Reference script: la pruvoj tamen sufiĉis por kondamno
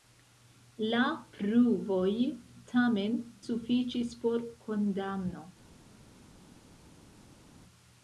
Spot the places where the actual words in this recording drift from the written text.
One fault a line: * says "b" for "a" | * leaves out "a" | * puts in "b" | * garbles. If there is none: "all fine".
all fine